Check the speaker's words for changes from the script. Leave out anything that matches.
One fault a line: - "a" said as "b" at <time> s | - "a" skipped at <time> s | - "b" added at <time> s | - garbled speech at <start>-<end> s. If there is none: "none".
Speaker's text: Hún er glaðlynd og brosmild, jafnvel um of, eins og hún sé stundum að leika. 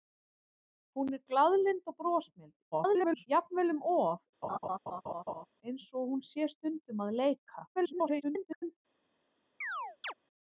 - garbled speech at 2.7-3.3 s
- garbled speech at 7.8-8.8 s